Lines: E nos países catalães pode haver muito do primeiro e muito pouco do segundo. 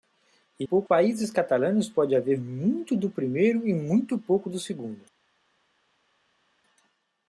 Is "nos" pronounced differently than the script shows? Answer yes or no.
yes